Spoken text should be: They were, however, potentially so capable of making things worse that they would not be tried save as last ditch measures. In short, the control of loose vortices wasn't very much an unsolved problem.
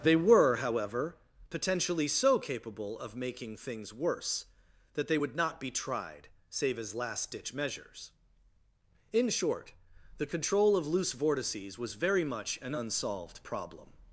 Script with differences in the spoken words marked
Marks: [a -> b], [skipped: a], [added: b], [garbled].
They were, however, potentially so capable of making things worse that they would not be tried save as last ditch measures. In short, the control of loose vortices [wasn't -> was] very much an unsolved problem.